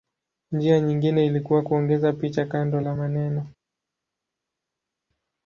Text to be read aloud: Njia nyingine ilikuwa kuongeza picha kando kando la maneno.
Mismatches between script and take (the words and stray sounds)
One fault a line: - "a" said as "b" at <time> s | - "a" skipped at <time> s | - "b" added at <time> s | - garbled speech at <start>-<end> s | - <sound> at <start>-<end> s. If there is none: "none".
- "kando" skipped at 2.8 s